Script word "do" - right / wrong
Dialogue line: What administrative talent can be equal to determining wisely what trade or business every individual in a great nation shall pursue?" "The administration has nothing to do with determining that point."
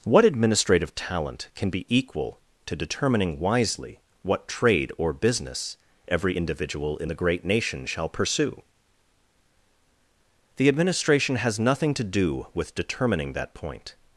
right